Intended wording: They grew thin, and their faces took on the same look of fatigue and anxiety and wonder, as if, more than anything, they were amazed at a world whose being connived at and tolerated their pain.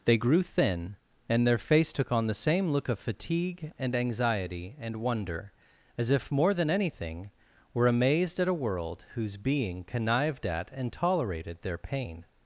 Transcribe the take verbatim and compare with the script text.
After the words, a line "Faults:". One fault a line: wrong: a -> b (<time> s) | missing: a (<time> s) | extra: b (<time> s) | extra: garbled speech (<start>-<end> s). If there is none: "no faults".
They grew thin, and their face took on the same look of fatigue and anxiety and wonder, as if, more than anything, were amazed at a world whose being connived at and tolerated their pain.
Faults:
wrong: faces -> face (1.6 s)
missing: they (7.3 s)